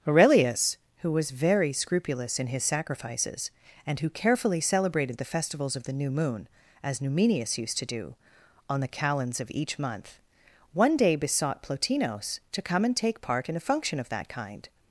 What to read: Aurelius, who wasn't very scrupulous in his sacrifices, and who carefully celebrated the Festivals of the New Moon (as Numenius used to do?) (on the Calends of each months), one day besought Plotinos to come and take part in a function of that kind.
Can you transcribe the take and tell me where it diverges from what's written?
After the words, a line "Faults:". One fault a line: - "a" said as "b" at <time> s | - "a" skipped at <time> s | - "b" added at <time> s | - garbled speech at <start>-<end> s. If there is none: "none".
Aurelius, who was very scrupulous in his sacrifices, and who carefully celebrated the Festivals of the New Moon (as Numenius used to do?) (on the Calends of each month), one day besought Plotinos to come and take part in a function of that kind.
Faults:
- "wasn't" said as "was" at 1.1 s
- "months" said as "month" at 9.8 s